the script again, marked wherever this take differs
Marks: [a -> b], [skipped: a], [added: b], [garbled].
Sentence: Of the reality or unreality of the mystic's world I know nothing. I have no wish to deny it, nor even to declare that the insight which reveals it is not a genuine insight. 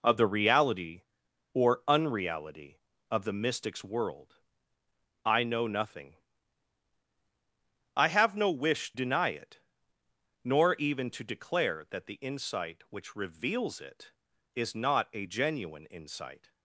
Of the reality or unreality of the mystic's world I know nothing. I have no wish [skipped: to] deny it, nor even to declare that the insight which reveals it is not a genuine insight.